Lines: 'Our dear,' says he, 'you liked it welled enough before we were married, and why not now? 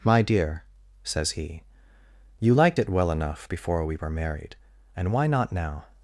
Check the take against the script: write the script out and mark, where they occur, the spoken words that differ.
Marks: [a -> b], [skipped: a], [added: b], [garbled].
['Our -> My] dear,' says he, 'you liked it [welled -> well] enough before we were married, and why not now?